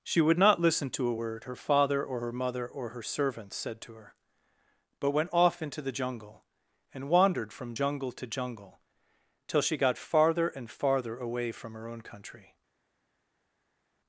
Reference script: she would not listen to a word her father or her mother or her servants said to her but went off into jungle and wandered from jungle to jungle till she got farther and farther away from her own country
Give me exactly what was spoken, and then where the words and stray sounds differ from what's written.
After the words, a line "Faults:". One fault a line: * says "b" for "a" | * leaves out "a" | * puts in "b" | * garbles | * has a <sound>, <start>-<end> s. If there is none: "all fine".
she would not listen to a word her father or her mother or her servants said to her but went off into the jungle and wandered from jungle to jungle till she got farther and farther away from her own country
Faults:
* puts in "the"